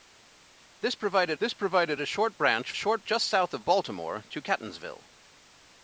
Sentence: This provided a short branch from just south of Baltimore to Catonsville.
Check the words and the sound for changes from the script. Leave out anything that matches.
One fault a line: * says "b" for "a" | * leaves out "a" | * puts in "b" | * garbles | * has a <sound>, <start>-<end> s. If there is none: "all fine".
* puts in "this provided"
* says "short" for "from"